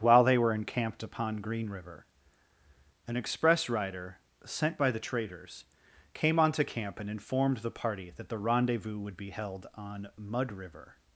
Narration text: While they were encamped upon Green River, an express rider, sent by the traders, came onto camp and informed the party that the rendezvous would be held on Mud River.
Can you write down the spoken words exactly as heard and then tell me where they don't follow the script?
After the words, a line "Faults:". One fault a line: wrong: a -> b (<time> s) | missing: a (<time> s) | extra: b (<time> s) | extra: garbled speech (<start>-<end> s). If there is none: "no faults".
While they were encamped upon Green River, an express rider, sent by the traders, came onto camp and informed the party that the rendezvous would be held on Mud River.
Faults:
no faults